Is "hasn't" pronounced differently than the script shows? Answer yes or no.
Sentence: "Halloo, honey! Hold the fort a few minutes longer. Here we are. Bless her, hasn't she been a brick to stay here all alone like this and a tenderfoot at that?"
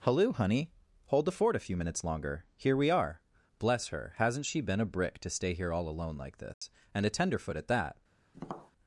no